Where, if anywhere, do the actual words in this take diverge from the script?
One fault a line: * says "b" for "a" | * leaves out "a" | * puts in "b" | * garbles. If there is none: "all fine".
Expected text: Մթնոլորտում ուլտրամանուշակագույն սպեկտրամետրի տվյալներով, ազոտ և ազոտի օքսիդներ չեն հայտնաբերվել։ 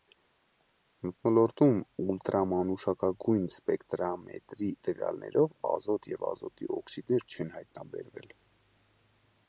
all fine